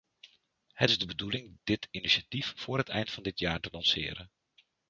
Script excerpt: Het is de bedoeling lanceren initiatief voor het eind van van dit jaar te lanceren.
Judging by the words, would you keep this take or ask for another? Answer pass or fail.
fail